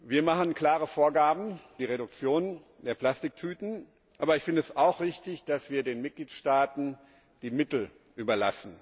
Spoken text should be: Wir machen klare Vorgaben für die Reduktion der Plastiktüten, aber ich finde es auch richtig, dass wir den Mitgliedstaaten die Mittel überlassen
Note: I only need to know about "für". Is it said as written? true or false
false